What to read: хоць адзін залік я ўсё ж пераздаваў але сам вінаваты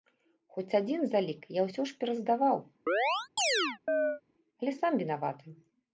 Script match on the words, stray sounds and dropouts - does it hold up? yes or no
no